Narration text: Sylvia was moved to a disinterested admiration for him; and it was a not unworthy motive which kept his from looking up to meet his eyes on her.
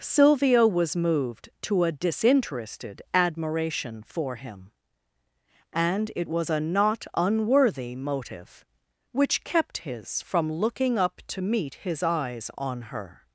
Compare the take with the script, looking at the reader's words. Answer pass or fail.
pass